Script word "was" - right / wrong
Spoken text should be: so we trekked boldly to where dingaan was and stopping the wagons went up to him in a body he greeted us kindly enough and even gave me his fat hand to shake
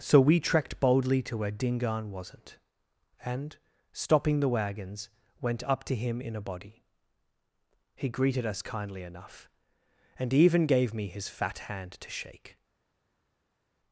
wrong